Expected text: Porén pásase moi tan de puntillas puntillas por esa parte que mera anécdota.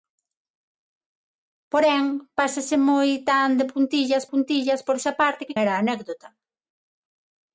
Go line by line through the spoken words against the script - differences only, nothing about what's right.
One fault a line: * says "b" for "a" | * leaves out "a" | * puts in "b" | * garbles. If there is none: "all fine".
all fine